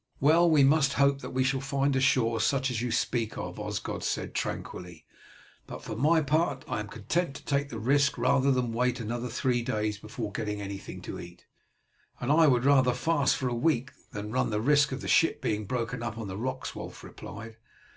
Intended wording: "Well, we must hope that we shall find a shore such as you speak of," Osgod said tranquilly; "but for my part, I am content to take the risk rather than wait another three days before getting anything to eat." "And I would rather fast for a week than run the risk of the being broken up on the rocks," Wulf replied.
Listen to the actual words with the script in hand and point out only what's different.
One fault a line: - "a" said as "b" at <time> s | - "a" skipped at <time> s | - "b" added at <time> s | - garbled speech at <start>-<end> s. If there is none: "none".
- "ship" added at 15.1 s